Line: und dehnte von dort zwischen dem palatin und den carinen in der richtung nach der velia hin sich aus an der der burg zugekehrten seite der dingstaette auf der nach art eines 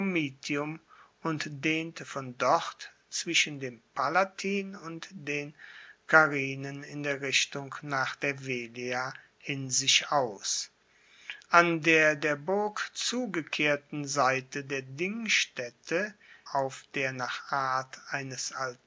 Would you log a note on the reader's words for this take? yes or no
no